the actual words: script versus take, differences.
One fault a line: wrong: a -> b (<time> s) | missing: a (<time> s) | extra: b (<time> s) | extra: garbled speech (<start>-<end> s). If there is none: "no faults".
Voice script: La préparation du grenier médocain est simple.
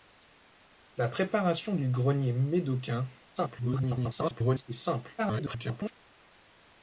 extra: garbled speech (3.3-4.6 s)
extra: garbled speech (5.2-5.9 s)